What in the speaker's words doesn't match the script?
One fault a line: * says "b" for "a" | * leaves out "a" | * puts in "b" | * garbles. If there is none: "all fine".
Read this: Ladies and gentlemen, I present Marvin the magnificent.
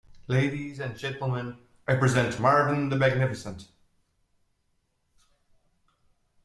all fine